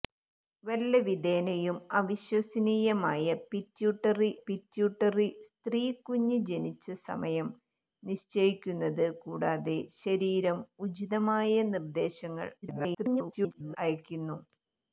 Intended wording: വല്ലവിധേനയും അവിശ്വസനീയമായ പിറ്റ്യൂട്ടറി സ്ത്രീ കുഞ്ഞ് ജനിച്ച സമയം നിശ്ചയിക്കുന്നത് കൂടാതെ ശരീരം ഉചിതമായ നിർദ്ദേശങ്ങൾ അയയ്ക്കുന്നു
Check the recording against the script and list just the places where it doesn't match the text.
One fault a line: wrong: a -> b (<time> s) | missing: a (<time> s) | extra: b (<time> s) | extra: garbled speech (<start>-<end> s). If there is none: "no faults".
extra: പിറ്റ്യൂട്ടറി (4.4 s)
extra: garbled speech (12.6-13.8 s)